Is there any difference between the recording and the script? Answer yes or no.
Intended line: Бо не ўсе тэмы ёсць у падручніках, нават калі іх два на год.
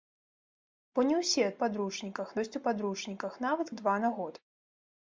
yes